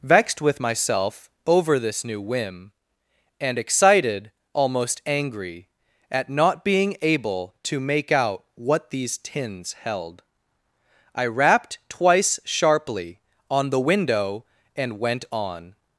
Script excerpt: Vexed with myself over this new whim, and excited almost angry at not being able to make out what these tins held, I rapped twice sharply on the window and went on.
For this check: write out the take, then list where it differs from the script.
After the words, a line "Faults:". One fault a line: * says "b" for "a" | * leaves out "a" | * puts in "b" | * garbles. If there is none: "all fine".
Vexed with myself over this new whim, and excited almost angry at not being able to make out what these tins held, I rapped twice sharply on the window and went on.
Faults:
all fine